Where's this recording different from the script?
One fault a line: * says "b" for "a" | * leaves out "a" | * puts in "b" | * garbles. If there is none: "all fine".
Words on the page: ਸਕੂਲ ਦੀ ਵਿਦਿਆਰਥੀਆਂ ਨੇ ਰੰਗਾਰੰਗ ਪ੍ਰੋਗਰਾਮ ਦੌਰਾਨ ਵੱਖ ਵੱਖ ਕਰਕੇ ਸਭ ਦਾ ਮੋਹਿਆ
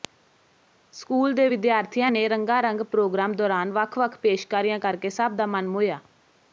* says "ਦੇ" for "ਦੀ"
* puts in "ਪੇਸ਼ਕਾਰੀਆਂ"
* puts in "ਮਨ"